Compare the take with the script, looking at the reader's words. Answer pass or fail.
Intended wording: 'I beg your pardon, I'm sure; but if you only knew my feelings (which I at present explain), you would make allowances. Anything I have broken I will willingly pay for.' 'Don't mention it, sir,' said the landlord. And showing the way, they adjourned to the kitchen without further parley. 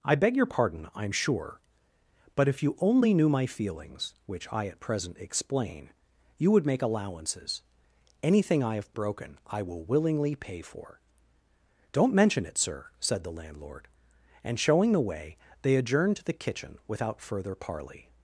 pass